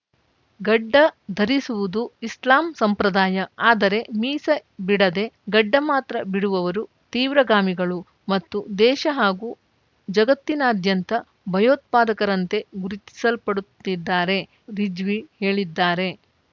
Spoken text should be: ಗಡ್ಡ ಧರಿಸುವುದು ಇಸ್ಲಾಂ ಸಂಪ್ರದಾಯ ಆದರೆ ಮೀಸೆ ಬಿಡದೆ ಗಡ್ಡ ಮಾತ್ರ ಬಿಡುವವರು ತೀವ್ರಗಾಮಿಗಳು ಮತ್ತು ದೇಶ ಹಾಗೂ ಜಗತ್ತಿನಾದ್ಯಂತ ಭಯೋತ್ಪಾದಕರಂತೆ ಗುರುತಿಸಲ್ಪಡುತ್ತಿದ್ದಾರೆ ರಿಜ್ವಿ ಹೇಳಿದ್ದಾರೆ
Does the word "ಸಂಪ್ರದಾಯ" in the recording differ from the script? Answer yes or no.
no